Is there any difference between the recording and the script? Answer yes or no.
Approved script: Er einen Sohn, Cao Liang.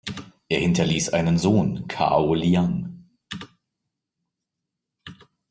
yes